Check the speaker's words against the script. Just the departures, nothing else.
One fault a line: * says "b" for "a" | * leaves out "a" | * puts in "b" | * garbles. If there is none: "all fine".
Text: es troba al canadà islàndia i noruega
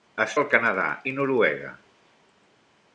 * leaves out "troba"
* leaves out "islàndia"